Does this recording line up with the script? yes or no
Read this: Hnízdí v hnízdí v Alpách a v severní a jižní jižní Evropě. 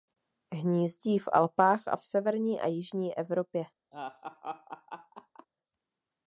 no